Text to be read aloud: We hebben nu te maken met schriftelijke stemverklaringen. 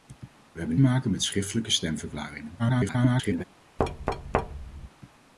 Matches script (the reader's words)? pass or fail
fail